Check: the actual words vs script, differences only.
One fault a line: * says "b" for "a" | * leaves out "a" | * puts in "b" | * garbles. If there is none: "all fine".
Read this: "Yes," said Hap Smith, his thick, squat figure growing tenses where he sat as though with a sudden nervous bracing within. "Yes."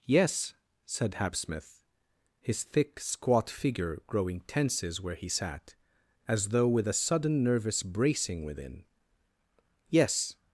all fine